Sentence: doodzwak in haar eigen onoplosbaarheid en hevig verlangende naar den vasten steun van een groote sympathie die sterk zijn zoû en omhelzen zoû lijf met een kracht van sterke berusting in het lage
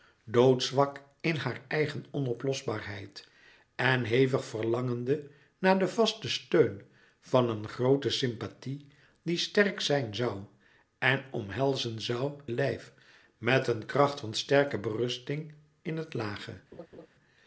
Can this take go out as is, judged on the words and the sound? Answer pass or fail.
fail